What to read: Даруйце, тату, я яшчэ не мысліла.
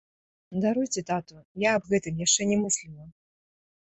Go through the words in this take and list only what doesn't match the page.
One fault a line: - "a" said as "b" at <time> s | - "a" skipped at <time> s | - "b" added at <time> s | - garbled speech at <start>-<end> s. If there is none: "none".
- "аб гэтым" added at 1.8 s